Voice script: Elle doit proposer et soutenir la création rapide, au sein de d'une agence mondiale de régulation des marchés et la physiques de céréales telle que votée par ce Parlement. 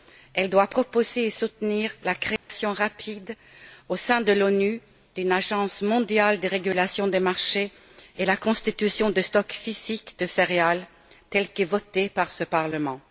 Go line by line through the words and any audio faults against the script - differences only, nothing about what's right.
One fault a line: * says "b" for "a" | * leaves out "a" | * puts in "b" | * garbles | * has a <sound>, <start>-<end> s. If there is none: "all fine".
* has a dropout, 2.4-2.5 s
* puts in "l'ONU"
* puts in "constitution de stocks"